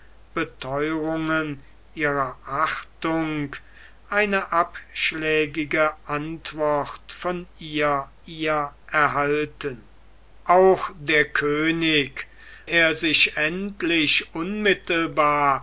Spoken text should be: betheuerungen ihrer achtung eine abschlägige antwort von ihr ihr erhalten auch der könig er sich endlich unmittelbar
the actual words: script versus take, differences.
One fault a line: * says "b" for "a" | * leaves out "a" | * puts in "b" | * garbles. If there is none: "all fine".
all fine